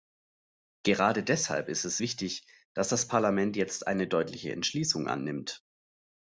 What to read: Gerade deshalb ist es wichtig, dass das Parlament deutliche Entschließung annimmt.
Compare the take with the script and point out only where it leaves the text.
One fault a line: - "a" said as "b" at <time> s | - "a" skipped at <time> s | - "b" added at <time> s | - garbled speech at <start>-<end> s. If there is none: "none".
- "jetzt eine" added at 3.6 s